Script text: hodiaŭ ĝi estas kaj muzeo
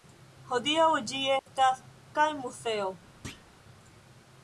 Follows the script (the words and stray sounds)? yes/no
no